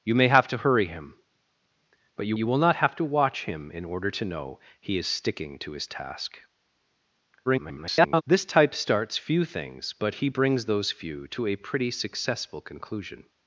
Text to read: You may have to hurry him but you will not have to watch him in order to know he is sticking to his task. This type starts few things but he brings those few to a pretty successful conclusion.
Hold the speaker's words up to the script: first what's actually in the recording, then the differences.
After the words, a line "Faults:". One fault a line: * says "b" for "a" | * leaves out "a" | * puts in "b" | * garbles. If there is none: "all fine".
You may have to hurry him but you you will not have to watch him in order to know he is sticking to his task. [garbled] This type starts few things but he brings those few to a pretty successful conclusion.
Faults:
* puts in "you"
* garbles